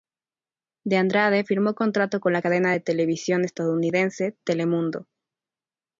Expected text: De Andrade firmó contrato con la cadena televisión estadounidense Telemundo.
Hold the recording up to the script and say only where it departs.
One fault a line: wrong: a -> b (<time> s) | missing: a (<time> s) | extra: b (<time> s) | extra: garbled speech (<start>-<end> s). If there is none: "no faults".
extra: de (2.7 s)